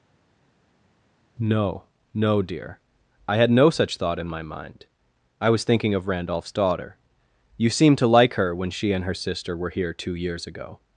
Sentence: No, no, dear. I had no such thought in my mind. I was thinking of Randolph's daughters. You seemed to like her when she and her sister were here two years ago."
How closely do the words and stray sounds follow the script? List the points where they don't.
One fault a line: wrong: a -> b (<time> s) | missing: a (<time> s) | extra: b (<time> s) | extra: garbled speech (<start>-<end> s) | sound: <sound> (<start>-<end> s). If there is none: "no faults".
wrong: daughters -> daughter (6.5 s)